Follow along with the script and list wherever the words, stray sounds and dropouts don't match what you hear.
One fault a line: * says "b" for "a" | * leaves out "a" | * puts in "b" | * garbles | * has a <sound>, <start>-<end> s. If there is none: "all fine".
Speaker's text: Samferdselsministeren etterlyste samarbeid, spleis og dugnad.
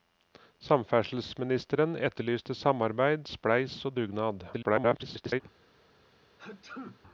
* garbles
* has a sneeze, 6.4-7.0 s